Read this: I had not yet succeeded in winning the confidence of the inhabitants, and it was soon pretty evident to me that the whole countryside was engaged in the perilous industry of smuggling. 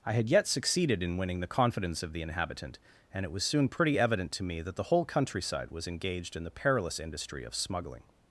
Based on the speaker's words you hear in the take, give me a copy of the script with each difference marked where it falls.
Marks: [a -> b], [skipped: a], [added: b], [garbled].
I had [skipped: not] yet succeeded in winning the confidence of the [inhabitants, -> inhabitant] and it was soon pretty evident to me that the whole countryside was engaged in the perilous industry of smuggling.